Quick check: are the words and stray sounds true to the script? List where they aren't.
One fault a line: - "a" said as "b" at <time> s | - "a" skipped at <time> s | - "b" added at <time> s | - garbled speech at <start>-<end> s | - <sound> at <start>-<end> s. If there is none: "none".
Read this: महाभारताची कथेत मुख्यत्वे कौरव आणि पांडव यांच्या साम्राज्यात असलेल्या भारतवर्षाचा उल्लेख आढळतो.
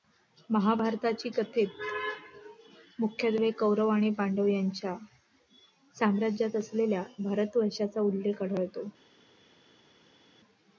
none